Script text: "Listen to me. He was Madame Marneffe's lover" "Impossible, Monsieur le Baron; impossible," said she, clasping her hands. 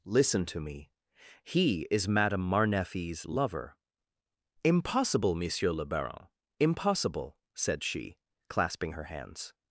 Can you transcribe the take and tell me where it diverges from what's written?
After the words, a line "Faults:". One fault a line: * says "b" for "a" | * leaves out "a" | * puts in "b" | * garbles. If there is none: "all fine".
"Listen to me. He is Madame Marneffe's lover" "Impossible, Monsieur le Baron; impossible," said she, clasping her hands.
Faults:
* says "is" for "was"